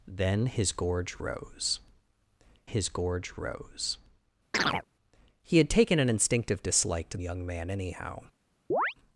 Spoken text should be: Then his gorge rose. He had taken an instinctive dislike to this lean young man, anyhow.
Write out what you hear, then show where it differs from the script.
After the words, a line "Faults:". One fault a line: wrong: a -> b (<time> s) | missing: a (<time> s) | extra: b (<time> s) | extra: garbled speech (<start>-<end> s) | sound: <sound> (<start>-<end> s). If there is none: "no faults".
Then his gorge rose his gorge rose. He had taken an instinctive dislike to young man, anyhow.
Faults:
extra: his gorge rose (2.6 s)
sound: chirp (4.5-4.8 s)
missing: this lean (7.2 s)
sound: chirp (8.7-8.9 s)